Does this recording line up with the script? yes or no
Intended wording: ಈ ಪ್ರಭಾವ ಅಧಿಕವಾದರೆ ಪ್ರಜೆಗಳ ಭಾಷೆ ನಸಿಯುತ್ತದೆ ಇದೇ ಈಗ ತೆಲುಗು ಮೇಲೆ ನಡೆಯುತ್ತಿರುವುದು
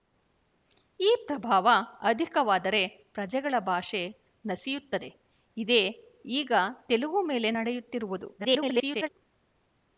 no